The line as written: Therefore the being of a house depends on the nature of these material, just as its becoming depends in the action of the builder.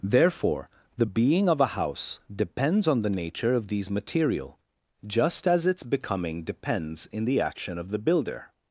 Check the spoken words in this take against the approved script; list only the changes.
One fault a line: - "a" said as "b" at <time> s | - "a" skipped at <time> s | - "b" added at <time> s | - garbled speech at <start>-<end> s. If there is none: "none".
none